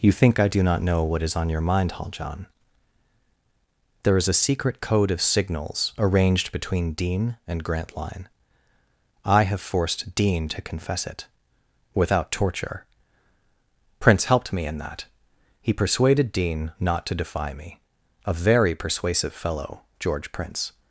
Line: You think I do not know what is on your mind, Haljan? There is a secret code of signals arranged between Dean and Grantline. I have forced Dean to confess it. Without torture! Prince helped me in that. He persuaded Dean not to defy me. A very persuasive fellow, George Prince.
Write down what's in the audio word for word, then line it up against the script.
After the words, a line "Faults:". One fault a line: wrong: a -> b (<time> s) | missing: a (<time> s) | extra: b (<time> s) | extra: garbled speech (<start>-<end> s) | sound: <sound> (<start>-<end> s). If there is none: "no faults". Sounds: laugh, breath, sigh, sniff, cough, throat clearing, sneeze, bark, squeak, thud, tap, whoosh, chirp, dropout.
You think I do not know what is on your mind, Haljan? There is a secret code of signals arranged between Dean and Grantline. I have forced Dean to confess it. Without torture! Prince helped me in that. He persuaded Dean not to defy me. A very persuasive fellow, George Prince.
Faults:
no faults